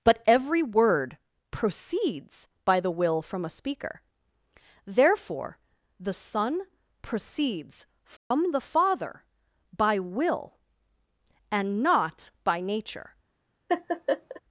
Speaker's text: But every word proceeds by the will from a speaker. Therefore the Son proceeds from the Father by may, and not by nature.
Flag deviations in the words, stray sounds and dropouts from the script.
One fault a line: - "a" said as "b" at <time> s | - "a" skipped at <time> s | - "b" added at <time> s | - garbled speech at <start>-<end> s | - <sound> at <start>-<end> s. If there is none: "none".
- dropout at 8.2-8.3 s
- "may" said as "will" at 10.0 s
- laugh at 13.7-14.4 s